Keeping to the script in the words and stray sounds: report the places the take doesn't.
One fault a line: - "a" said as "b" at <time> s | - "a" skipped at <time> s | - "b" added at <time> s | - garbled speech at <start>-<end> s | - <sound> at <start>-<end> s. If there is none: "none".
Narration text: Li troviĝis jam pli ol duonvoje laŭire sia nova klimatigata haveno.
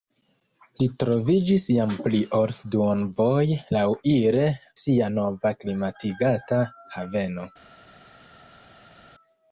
none